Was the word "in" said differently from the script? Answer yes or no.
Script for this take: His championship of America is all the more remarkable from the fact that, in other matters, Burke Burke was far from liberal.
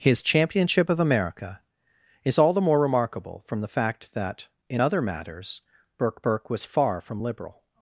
no